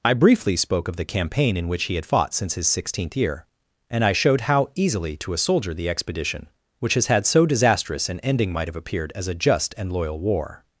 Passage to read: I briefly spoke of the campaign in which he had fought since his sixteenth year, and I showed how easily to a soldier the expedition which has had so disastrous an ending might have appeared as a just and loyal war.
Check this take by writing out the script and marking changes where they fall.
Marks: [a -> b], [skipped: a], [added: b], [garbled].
I briefly spoke of the campaign in which he had fought since his sixteenth year, and I showed how easily to a soldier the expedition which has had so disastrous an ending might have appeared as a just and loyal war.